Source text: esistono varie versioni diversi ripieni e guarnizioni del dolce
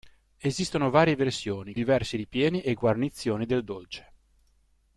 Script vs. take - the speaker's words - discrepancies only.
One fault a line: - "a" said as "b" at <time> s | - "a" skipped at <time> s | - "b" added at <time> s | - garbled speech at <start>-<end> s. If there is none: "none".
none